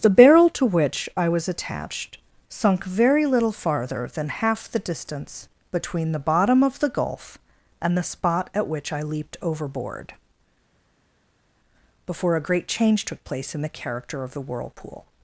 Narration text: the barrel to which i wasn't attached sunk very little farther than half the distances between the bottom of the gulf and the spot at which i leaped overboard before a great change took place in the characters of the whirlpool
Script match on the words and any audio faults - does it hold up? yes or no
no